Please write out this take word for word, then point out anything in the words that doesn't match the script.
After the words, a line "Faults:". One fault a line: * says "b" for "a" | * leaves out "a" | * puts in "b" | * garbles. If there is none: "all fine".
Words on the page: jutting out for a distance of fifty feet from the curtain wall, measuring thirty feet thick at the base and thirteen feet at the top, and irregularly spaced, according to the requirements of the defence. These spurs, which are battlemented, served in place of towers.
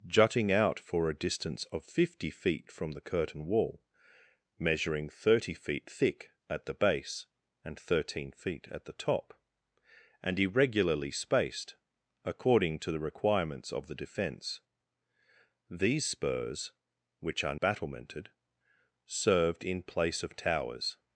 jutting out for a distance of fifty feet from the curtain wall, measuring thirty feet thick at the base and thirteen feet at the top, and irregularly spaced, according to the requirements of the defence. These spurs, which are battlemented, served in place of towers.
Faults:
all fine